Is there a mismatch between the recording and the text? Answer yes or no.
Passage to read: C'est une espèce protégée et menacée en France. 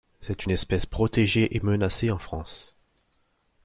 no